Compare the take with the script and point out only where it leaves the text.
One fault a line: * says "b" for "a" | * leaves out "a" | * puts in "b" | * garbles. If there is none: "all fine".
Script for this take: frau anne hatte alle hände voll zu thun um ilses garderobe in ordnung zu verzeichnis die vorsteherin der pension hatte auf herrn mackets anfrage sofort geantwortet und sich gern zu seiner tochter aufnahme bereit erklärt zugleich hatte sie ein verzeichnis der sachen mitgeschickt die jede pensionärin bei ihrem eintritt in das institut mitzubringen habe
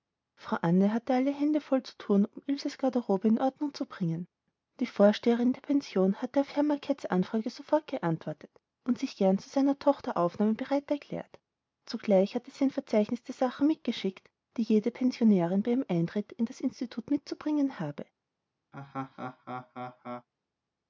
* says "bringen" for "verzeichnis"